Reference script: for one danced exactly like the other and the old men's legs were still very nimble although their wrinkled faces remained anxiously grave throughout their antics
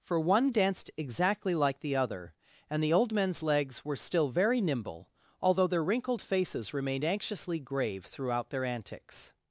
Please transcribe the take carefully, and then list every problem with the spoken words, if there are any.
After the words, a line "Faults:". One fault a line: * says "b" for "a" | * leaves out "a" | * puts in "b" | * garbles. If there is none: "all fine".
for one danced exactly like the other and the old men's legs were still very nimble although their wrinkled faces remained anxiously grave throughout their antics
Faults:
all fine